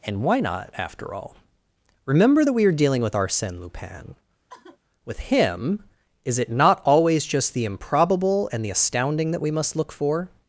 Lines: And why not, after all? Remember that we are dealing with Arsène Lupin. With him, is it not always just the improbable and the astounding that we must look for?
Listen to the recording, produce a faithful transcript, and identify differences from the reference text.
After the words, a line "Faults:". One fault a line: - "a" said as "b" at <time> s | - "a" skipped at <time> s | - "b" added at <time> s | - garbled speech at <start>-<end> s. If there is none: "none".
And why not, after all? Remember that we are dealing with Arsène Lupin. With him, is it not always just the improbable and the astounding that we must look for?
Faults:
none